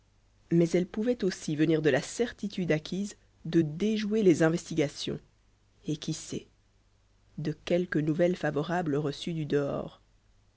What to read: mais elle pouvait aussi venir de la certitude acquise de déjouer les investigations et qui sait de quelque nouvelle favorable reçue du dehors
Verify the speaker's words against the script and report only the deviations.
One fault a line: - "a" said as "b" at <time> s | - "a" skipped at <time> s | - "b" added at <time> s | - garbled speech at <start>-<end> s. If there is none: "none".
none